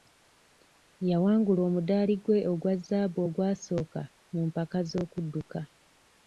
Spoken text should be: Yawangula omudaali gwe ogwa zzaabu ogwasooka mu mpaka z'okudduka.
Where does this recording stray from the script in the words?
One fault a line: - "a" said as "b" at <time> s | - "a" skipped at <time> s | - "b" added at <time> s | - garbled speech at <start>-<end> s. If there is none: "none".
none